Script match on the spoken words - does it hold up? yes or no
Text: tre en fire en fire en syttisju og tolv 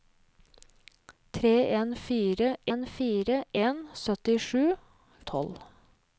yes